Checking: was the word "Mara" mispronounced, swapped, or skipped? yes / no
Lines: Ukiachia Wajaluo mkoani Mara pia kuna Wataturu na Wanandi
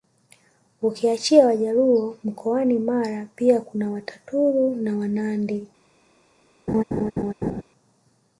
no